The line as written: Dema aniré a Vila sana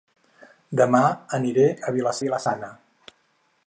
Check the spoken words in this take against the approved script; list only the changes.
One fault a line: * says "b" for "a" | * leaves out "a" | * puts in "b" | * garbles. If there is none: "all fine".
* puts in "Vila"